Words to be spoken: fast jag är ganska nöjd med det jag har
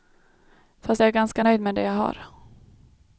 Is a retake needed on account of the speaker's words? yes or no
no